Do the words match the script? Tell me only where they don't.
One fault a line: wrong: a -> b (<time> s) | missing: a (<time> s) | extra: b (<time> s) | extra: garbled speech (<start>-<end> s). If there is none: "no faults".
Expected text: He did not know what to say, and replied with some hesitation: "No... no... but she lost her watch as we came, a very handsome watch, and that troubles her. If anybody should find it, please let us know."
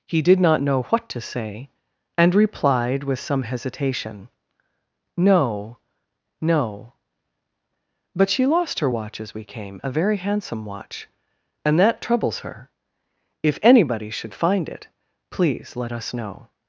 no faults